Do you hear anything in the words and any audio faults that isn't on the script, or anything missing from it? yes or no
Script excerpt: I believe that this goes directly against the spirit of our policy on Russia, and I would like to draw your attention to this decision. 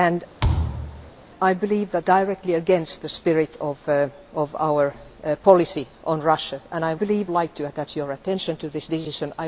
yes